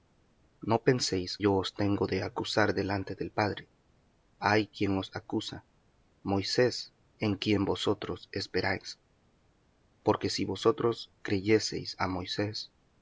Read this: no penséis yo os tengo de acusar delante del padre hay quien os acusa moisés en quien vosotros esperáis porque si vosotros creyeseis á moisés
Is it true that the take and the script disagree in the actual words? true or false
false